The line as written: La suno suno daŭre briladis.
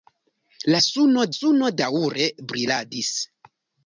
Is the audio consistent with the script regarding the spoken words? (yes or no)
yes